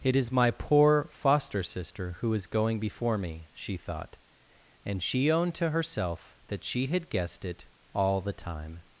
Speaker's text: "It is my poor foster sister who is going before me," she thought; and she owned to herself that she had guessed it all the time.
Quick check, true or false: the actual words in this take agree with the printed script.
true